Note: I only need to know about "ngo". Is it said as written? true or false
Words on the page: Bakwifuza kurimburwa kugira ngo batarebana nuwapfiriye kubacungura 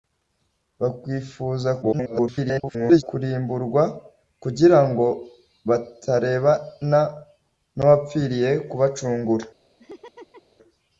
true